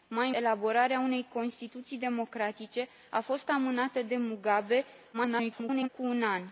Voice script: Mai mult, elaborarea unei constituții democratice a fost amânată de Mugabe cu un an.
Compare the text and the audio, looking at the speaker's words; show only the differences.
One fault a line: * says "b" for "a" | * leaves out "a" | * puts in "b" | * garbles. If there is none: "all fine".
* leaves out "mult"
* garbles